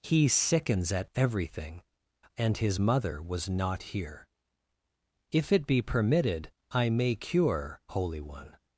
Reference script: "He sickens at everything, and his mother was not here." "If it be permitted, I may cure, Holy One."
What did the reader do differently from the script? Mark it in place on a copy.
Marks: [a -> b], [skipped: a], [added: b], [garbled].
"He sickens at everything, and his mother was not here." "If it be permitted, I may cure, Holy One."